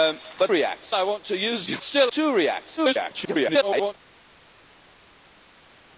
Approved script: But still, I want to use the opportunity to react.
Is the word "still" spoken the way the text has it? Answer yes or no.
no